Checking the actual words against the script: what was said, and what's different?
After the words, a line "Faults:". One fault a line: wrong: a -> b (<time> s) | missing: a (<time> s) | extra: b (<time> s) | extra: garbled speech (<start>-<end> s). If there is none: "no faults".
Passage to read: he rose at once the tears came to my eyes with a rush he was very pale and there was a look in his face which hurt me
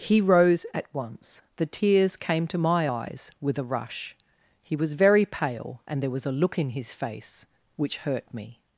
he rose at once the tears came to my eyes with a rush he was very pale and there was a look in his face which hurt me
Faults:
no faults